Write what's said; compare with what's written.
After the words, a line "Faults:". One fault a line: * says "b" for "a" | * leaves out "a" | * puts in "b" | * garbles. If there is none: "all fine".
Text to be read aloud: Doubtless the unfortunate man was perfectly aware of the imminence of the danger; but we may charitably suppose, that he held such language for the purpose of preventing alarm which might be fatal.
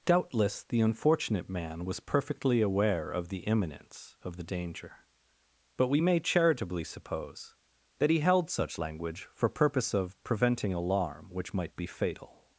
Doubtless the unfortunate man was perfectly aware of the imminence of the danger; but we may charitably suppose, that he held such language for purpose of preventing alarm which might be fatal.
Faults:
* leaves out "the"